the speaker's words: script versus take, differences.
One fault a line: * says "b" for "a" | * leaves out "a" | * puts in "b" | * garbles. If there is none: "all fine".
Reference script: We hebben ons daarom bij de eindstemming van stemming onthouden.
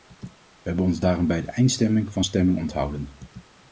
all fine